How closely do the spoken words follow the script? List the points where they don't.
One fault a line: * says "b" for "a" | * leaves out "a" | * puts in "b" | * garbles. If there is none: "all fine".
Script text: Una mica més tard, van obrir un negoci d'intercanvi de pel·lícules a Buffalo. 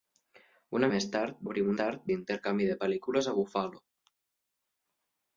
* leaves out "mica"
* leaves out "van"
* says "tard" for "negoci"